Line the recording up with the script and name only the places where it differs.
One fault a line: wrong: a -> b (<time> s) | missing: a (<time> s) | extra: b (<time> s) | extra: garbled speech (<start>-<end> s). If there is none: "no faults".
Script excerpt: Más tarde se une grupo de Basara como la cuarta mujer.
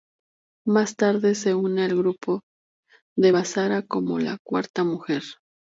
extra: al (1.8 s)